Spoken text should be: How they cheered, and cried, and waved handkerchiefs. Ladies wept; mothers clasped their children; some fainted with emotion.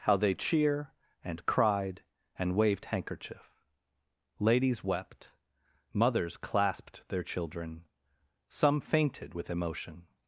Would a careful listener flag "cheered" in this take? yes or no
yes